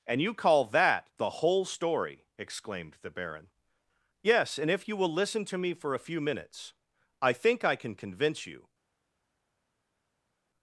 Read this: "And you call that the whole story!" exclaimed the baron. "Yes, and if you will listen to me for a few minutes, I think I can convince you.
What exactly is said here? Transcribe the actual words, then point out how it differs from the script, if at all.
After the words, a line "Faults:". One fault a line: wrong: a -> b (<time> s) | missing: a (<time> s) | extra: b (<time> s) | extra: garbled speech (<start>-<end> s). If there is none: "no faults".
"And you call that the whole story!" exclaimed the baron. "Yes, and if you will listen to me for a few minutes, I think I can convince you.
Faults:
no faults